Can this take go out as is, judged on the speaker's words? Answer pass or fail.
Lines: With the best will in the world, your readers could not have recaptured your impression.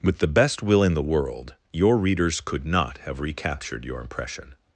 pass